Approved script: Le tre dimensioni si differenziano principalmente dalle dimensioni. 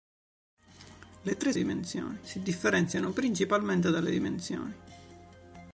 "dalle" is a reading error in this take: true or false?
false